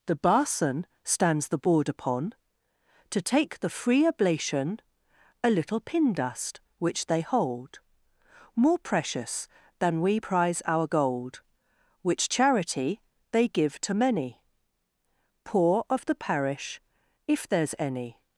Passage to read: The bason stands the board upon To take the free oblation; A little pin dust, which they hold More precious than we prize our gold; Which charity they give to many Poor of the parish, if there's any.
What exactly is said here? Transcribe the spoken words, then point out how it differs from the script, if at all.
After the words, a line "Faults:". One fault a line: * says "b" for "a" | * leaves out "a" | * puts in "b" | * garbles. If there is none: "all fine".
The bason stands the board upon To take the free oblation; A little pin dust, which they hold More precious than we prize our gold; Which charity they give to many Poor of the parish, if there's any.
Faults:
all fine